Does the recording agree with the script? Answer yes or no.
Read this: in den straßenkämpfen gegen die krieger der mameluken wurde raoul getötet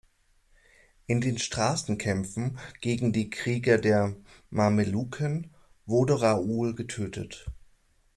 yes